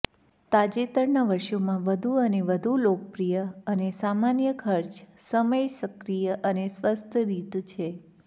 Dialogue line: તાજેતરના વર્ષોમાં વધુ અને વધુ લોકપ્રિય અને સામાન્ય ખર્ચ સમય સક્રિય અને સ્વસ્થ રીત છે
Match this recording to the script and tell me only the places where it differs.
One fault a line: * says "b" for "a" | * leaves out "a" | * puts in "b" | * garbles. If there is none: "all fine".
all fine